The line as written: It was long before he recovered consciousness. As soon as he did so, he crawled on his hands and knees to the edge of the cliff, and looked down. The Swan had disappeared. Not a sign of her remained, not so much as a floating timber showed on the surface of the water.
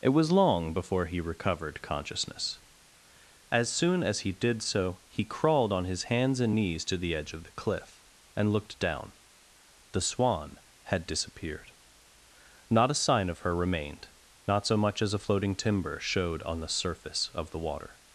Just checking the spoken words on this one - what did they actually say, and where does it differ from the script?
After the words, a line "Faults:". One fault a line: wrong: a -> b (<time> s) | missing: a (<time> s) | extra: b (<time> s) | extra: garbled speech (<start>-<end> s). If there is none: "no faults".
It was long before he recovered consciousness. As soon as he did so, he crawled on his hands and knees to the edge of the cliff, and looked down. The Swan had disappeared. Not a sign of her remained, not so much as a floating timber showed on the surface of the water.
Faults:
no faults